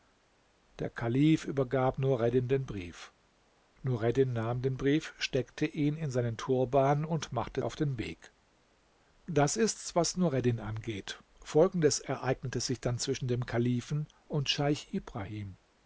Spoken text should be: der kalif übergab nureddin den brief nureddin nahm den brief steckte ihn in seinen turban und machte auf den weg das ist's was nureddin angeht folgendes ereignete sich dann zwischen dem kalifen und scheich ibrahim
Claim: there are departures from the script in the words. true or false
false